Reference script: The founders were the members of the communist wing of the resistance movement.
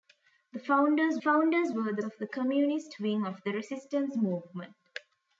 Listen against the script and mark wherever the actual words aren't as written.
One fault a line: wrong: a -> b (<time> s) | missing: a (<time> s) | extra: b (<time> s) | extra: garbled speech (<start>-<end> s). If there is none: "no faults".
extra: founders (1.2 s)
missing: members (2.0 s)